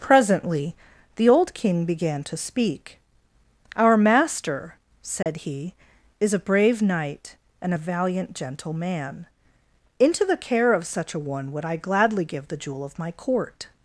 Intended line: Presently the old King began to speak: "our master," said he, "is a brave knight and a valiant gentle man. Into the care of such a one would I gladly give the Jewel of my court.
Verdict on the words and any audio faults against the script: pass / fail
fail